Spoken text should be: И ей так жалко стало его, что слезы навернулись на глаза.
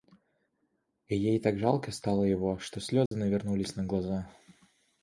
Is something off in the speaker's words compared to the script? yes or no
no